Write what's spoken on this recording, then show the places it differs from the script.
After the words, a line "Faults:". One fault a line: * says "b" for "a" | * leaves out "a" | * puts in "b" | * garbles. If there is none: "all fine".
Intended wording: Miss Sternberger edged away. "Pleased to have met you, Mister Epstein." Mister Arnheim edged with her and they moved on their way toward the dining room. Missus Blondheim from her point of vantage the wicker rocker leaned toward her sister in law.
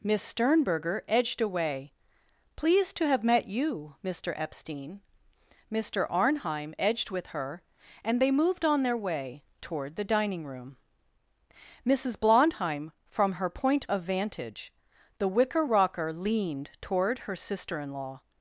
Miss Sternberger edged away. "Pleased to have met you, Mister Epstein." Mister Arnheim edged with her and they moved on their way toward the dining room. Missus Blondheim from her point of vantage the wicker rocker leaned toward her sister in law.
Faults:
all fine